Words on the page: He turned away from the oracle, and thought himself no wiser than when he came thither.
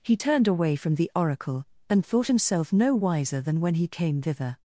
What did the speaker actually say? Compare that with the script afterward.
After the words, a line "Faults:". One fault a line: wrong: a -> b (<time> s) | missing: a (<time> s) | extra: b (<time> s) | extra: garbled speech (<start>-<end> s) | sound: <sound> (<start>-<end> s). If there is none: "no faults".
He turned away from the oracle, and thought himself no wiser than when he came thither.
Faults:
no faults